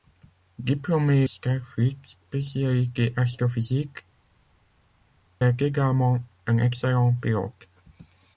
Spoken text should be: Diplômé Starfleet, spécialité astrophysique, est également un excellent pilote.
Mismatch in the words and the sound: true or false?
false